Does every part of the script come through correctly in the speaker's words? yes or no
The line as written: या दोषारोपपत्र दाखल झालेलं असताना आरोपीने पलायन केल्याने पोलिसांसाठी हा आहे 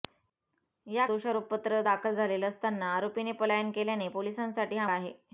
yes